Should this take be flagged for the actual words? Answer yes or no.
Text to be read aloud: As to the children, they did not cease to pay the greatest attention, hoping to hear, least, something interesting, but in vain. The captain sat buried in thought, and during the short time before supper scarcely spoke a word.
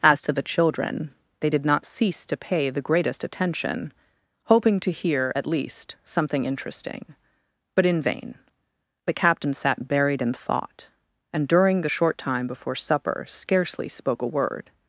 yes